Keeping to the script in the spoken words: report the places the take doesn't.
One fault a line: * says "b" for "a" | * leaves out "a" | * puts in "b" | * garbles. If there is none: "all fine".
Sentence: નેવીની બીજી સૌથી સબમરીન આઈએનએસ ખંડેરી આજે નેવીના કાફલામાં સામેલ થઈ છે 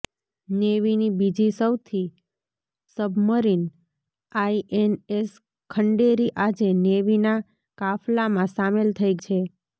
all fine